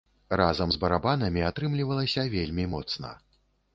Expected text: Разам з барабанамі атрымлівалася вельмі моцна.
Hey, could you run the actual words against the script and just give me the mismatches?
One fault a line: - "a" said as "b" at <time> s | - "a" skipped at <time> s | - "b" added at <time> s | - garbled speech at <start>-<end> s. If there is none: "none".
none